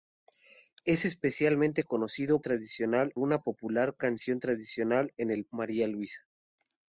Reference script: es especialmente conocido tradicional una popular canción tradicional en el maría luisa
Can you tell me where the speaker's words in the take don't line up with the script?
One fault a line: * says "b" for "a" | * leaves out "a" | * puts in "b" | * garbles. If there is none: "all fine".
all fine